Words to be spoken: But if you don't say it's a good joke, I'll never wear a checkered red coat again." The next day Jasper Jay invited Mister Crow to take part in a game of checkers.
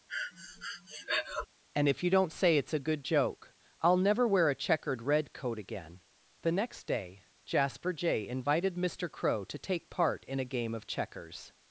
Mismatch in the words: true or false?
true